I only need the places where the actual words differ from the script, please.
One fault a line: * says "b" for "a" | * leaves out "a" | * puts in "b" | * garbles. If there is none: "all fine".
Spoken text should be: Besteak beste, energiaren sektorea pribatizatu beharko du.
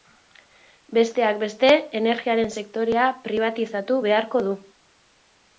all fine